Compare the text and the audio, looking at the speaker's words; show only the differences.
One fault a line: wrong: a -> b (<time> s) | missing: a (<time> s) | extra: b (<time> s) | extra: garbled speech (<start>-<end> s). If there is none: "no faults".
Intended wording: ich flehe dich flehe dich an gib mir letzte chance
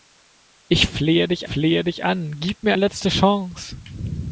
no faults